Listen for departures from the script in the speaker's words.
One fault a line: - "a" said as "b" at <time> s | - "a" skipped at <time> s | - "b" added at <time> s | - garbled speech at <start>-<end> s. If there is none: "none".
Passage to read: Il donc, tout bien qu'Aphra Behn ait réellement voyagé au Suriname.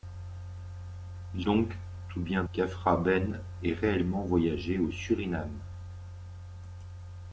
none